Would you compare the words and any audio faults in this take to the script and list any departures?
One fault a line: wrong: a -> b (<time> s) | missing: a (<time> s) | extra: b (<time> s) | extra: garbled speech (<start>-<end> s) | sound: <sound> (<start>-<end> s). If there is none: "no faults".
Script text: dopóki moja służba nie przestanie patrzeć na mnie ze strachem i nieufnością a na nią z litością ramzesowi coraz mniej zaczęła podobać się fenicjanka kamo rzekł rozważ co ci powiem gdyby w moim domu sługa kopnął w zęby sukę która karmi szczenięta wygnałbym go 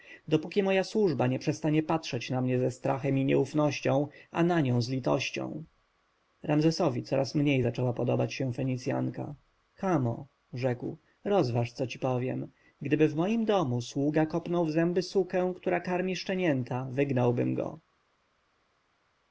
no faults